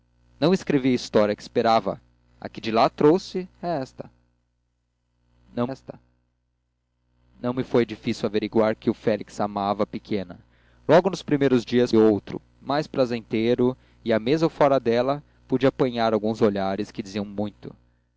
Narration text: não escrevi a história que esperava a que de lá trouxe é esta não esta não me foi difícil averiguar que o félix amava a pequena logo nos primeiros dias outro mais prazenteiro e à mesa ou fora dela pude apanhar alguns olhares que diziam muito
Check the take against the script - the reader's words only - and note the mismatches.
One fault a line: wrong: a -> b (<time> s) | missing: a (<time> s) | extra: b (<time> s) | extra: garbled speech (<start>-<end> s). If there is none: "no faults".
no faults